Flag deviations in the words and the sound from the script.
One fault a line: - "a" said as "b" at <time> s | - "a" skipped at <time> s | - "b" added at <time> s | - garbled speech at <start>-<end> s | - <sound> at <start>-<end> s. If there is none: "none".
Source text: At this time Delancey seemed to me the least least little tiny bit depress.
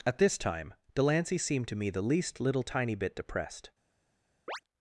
- "least" skipped at 2.4 s
- "depress" said as "depressed" at 3.1 s
- chirp at 4.5-4.6 s